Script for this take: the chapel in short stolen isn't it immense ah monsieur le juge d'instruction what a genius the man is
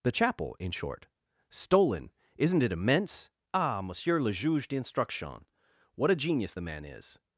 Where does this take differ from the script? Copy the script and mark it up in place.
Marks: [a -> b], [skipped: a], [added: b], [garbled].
the chapel in short stolen isn't it immense ah monsieur le juge d'instruction what a genius the man is